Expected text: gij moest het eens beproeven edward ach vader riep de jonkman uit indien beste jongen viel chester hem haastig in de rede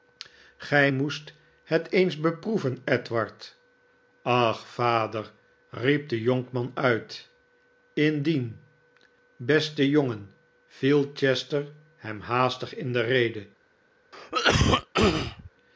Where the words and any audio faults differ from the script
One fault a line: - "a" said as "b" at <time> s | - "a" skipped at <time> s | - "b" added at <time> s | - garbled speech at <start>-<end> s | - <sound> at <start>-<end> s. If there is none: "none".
- cough at 14.1-15.5 s